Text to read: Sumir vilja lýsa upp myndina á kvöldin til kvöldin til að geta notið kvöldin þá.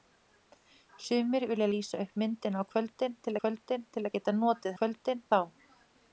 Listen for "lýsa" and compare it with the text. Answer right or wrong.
right